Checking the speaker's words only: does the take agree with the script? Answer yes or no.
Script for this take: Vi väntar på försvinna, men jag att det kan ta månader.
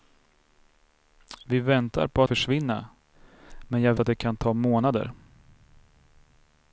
yes